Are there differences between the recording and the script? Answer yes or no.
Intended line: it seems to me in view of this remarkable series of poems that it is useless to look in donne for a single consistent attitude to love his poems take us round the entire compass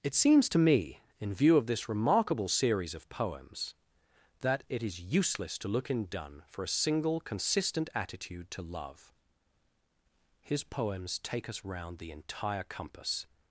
no